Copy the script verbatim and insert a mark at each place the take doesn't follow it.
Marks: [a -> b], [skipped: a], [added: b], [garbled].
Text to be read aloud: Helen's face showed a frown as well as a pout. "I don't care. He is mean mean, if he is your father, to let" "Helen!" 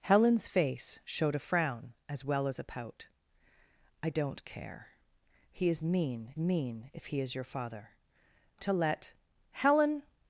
Helen's face showed a frown as well as a pout. "I don't care. He is mean mean, if he is your father, to let" "Helen!"